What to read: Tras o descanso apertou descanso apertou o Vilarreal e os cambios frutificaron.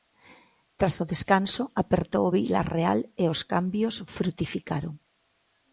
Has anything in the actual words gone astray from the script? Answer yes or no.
yes